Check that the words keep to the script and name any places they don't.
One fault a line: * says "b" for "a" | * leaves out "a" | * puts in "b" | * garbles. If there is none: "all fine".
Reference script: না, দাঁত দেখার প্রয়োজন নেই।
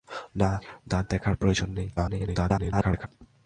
* garbles